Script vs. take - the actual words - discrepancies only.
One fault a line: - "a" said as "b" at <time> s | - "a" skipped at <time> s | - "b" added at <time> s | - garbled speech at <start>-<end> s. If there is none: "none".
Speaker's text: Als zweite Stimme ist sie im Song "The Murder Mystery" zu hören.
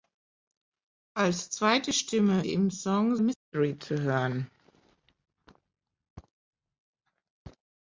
- "ist" skipped at 2.5 s
- "The Murder" skipped at 3.2 s